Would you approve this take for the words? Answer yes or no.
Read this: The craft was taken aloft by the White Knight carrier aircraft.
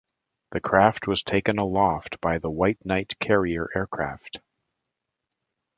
yes